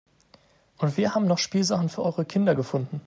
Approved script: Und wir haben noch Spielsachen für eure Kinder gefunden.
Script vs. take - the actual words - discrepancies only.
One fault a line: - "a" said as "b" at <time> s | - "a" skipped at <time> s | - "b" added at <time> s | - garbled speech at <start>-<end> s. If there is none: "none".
none